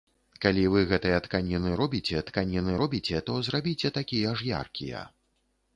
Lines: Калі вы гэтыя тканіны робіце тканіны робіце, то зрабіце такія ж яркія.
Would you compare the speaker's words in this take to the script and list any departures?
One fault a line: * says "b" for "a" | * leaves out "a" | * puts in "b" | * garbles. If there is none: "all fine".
all fine